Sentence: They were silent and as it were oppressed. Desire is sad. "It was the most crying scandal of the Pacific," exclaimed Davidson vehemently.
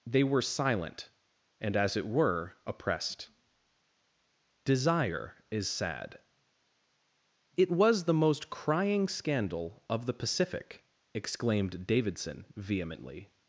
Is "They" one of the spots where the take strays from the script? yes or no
no